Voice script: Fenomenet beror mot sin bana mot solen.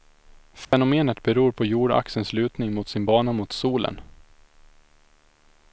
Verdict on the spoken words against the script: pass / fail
fail